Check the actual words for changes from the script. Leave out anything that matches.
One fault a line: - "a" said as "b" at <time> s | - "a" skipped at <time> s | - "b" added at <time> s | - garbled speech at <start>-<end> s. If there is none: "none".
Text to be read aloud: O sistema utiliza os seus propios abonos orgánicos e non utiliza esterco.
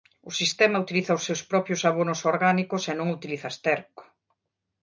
none